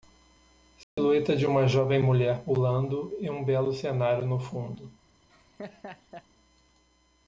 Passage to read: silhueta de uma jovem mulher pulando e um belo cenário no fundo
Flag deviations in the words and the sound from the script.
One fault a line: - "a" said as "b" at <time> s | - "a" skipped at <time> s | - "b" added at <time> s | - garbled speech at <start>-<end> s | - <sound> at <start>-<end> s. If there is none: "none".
- dropout at 0.8-1.0 s
- laugh at 5.3-6.3 s